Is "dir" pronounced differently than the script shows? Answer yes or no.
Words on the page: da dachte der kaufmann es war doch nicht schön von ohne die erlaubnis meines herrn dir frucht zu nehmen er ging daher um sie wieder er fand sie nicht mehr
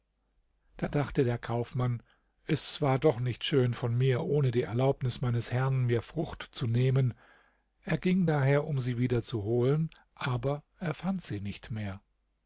yes